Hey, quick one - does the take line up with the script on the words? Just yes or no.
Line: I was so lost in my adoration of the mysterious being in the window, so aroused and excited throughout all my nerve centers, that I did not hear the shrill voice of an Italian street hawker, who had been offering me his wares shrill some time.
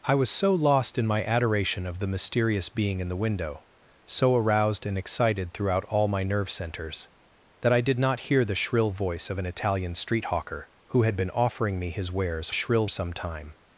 yes